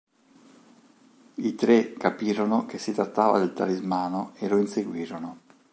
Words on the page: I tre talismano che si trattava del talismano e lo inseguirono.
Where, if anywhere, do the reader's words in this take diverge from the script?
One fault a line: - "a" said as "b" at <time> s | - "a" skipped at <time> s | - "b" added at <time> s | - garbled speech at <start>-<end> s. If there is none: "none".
- "talismano" said as "capirono" at 1.9 s